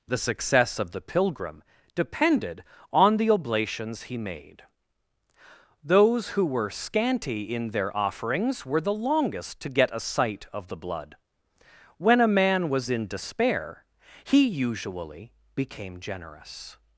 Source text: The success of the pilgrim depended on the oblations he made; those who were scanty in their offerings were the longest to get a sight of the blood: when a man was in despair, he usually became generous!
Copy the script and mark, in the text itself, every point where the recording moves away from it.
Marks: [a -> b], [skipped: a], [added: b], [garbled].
The success of the pilgrim depended on the oblations he made; those who were scanty in their offerings were the longest to get a sight of the blood: when a man was in despair, he usually became generous!